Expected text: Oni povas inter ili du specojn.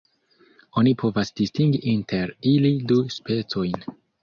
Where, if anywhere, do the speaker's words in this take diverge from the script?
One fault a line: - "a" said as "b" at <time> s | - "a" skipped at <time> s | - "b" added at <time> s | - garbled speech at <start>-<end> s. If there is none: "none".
- "distingi" added at 1.4 s